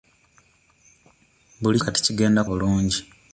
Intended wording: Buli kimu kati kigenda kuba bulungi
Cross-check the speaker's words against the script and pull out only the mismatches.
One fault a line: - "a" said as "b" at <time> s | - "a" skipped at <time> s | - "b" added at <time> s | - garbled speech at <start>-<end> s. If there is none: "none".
- "kimu" skipped at 1.8 s
- "kuba" skipped at 2.4 s